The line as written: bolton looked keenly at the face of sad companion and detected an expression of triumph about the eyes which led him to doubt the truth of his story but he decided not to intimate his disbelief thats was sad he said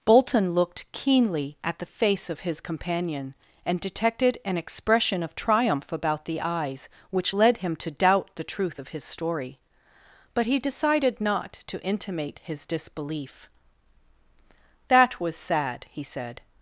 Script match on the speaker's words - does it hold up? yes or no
no